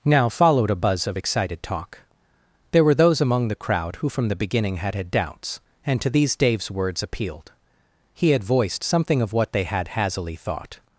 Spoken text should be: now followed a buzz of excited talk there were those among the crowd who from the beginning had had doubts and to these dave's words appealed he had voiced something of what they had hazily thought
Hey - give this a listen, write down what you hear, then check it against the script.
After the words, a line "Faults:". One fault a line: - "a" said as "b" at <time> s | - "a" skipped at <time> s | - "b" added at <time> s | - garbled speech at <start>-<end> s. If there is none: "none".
now followed a buzz of excited talk there were those among the crowd who from the beginning had had doubts and to these dave's words appealed he had voiced something of what they had hazily thought
Faults:
none